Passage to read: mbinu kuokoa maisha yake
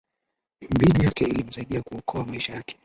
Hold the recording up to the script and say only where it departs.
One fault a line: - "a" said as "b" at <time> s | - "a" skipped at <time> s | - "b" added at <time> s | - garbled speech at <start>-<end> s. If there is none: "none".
- "yake ilimsaidia" added at 1.1 s